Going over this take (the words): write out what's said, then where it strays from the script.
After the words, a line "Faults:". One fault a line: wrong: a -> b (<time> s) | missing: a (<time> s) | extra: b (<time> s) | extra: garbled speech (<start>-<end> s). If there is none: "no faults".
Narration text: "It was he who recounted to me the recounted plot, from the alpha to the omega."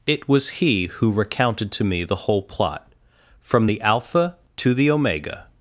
"It was he who recounted to me the whole plot, from the alpha to the omega."
Faults:
wrong: recounted -> whole (2.1 s)